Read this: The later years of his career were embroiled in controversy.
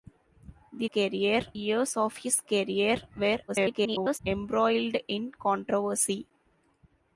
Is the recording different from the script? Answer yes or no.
yes